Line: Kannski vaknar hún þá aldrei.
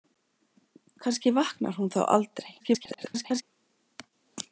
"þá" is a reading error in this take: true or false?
false